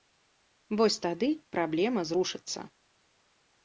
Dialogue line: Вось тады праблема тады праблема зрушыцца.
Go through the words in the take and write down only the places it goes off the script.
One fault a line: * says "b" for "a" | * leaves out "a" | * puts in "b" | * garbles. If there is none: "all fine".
* leaves out "тады праблема"